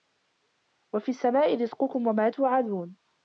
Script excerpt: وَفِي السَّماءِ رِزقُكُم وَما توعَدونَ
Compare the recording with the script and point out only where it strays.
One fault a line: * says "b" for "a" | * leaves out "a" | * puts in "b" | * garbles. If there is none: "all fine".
all fine